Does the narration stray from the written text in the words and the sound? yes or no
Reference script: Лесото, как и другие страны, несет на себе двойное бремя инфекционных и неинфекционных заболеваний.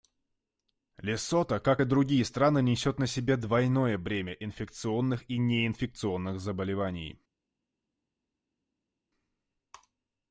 no